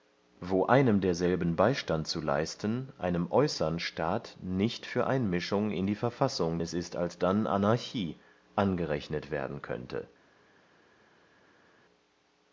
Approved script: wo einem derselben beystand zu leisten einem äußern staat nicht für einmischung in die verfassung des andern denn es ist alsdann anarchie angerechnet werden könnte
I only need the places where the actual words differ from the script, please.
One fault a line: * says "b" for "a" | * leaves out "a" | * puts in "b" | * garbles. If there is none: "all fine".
* leaves out "des andern denn"